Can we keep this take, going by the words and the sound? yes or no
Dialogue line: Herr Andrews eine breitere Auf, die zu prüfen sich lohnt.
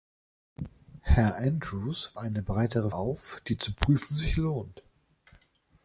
yes